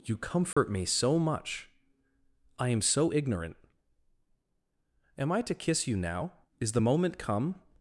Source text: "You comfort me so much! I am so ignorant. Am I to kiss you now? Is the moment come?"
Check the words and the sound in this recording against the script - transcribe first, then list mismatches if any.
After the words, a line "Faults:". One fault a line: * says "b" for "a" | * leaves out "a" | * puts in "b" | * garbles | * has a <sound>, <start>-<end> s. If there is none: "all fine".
"You comfort me so much! I am so ignorant. Am I to kiss you now? Is the moment come?"
Faults:
* has a dropout, 0.5-0.6 s